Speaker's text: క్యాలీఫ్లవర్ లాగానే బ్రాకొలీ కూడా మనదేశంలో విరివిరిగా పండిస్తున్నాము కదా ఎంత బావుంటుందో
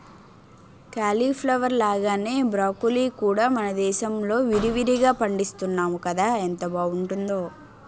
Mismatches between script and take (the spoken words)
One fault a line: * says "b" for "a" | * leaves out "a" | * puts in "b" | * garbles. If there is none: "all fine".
all fine